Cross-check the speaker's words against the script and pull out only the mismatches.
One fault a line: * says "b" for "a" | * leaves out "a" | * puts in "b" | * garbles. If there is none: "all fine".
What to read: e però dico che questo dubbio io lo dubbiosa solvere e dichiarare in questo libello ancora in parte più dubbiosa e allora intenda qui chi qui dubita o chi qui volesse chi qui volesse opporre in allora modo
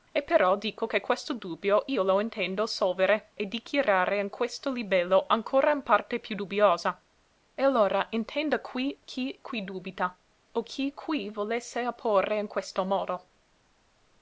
* says "intendo" for "dubbiosa"
* leaves out "chi qui volesse"
* says "questo" for "allora"